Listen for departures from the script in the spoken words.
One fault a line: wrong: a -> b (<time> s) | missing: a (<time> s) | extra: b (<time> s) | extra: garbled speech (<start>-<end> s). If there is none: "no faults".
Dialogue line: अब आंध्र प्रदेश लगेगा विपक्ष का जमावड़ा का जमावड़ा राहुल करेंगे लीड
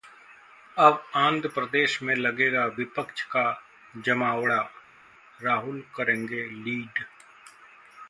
extra: में (2.0 s)
missing: का जमावड़ा (4.6 s)